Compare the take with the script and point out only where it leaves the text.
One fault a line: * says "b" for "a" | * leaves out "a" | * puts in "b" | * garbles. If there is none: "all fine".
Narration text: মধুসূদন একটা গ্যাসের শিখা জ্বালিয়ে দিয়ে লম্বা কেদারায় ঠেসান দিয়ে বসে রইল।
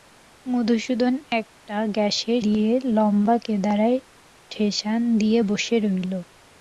* leaves out "শিখা জ্বালিয়ে"